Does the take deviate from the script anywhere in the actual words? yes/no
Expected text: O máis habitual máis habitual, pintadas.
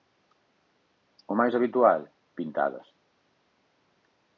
yes